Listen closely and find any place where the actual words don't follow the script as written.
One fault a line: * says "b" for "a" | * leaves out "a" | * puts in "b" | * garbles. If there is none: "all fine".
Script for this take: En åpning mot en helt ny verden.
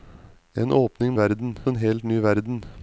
* says "verden" for "mot"